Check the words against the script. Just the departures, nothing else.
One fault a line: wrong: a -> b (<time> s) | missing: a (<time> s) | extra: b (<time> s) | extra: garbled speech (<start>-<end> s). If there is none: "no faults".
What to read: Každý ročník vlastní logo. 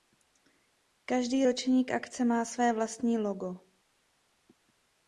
extra: akce má své (1.9 s)